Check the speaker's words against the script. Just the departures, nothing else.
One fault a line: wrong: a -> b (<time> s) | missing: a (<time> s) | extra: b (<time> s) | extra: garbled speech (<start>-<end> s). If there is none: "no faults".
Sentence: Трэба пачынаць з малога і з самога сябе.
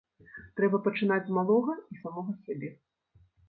no faults